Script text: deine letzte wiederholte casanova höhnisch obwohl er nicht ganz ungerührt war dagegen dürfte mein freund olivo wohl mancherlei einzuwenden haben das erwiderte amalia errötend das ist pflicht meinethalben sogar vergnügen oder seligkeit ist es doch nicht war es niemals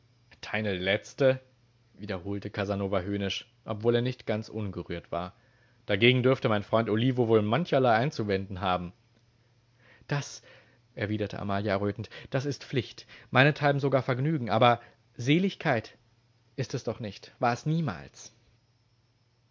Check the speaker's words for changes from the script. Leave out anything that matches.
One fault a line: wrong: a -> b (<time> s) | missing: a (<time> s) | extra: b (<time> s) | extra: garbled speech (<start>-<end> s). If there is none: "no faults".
wrong: oder -> aber (14.5 s)